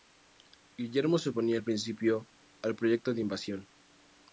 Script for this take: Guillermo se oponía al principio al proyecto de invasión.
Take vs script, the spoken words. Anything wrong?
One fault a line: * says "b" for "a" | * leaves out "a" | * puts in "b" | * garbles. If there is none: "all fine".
all fine